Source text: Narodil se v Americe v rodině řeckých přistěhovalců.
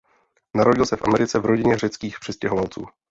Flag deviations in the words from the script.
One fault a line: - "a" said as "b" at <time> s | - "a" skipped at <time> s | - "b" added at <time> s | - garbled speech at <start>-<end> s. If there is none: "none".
none